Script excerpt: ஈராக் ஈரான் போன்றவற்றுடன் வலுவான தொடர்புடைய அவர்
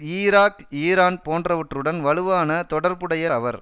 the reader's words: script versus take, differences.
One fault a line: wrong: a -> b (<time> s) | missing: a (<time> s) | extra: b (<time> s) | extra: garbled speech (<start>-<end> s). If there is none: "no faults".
no faults